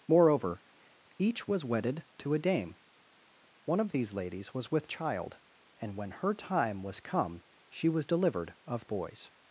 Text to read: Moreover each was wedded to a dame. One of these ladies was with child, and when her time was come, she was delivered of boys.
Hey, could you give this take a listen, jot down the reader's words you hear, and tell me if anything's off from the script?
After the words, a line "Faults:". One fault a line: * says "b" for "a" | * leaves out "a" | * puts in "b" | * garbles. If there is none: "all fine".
Moreover each was wedded to a dame. One of these ladies was with child, and when her time was come, she was delivered of boys.
Faults:
all fine